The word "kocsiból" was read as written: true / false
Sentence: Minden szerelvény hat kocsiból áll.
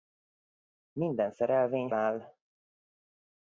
false